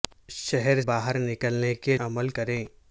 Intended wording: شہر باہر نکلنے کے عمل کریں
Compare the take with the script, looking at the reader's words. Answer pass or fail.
pass